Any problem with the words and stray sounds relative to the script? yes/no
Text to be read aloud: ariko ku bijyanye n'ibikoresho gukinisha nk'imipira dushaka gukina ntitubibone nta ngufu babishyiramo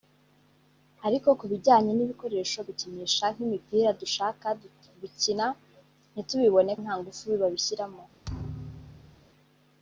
yes